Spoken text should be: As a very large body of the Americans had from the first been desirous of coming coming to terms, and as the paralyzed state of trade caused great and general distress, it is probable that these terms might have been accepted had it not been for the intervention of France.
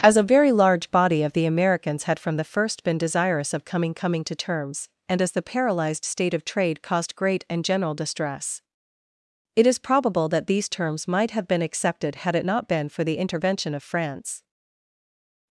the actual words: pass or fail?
pass